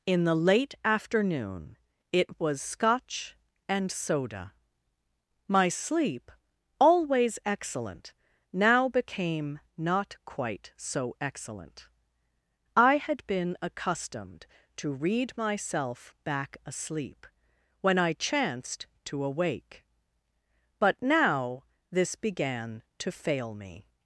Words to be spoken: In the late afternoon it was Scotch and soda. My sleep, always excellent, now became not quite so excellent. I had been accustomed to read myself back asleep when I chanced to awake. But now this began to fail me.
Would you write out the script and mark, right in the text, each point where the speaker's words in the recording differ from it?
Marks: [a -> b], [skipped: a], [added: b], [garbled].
In the late afternoon it was Scotch and soda. My sleep, always excellent, now became not quite so excellent. I had been accustomed to read myself back asleep when I chanced to awake. But now this began to fail me.